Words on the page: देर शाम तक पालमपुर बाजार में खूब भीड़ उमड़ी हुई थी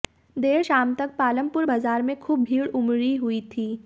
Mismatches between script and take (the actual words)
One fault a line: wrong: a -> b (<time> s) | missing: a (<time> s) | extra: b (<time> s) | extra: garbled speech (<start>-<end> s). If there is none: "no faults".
no faults